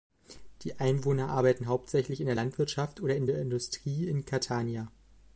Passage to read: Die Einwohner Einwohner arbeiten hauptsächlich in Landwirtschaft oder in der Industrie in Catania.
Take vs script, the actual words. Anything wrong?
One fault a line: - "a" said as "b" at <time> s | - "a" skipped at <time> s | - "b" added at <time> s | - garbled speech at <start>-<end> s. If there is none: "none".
- "Einwohner" skipped at 1.3 s
- "der" added at 2.2 s